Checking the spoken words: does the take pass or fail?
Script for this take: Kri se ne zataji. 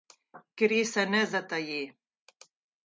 pass